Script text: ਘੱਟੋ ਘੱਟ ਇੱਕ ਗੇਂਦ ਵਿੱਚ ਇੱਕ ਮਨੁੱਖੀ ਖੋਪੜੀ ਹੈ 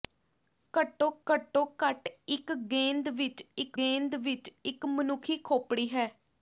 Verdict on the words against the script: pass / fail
fail